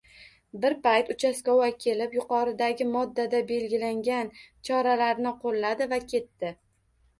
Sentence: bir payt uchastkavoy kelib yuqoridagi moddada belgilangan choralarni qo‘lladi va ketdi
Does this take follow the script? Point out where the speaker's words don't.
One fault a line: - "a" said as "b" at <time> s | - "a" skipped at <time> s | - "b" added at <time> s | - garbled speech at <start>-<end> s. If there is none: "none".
none